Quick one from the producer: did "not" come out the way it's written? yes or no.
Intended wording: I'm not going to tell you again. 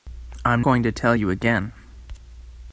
no